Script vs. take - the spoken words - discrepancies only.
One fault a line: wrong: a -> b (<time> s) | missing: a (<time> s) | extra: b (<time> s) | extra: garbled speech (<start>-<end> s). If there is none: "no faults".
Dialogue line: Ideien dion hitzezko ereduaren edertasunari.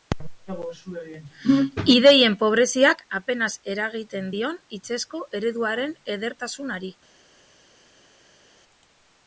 extra: pobreziak apenas eragiten (2.4 s)